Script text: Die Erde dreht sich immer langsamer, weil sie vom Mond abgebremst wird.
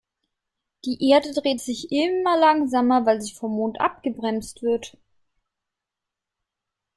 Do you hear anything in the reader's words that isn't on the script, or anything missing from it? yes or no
no